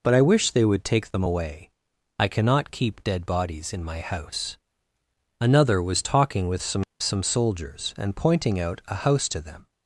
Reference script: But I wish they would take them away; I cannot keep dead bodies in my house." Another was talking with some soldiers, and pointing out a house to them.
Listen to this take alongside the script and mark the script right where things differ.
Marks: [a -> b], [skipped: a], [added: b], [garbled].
But I wish they would take them away; I cannot keep dead bodies in my house." Another was talking with some [added: some] soldiers, and pointing out a house to them.